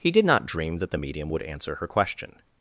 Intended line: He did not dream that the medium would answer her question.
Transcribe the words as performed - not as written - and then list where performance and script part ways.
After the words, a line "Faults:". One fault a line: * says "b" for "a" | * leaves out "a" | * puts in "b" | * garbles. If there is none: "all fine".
He did not dream that the medium would answer her question.
Faults:
all fine